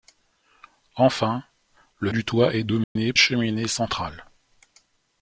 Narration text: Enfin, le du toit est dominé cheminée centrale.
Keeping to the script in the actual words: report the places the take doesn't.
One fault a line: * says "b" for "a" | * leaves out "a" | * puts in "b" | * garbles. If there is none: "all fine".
all fine